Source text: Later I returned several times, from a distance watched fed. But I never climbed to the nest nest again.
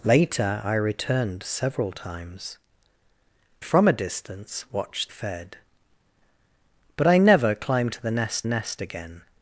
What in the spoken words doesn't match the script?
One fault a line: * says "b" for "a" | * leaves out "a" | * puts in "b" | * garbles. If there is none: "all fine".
all fine